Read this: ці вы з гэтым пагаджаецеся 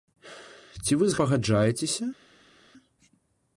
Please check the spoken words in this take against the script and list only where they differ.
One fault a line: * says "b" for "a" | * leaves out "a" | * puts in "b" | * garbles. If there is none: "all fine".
* leaves out "гэтым"